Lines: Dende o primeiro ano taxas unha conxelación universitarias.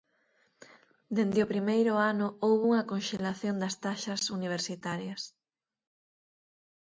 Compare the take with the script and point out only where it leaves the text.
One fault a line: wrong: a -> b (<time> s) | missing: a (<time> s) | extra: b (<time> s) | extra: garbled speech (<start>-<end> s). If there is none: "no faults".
wrong: taxas -> houbo (2.5 s)
extra: das taxas (3.6 s)